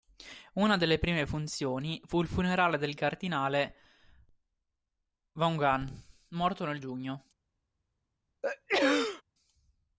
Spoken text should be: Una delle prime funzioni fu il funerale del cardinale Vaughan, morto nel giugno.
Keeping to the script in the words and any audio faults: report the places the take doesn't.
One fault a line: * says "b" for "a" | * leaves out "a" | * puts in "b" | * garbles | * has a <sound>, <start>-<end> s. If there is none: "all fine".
* has a sneeze, 8.4-9.2 s